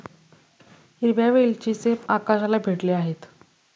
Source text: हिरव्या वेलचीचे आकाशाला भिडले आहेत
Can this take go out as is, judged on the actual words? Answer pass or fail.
pass